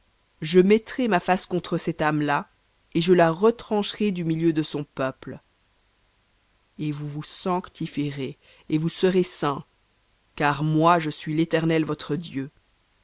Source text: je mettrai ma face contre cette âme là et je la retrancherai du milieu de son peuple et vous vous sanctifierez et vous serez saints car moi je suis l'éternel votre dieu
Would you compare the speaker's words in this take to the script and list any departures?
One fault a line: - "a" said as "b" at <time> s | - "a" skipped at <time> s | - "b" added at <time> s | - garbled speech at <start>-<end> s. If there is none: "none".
none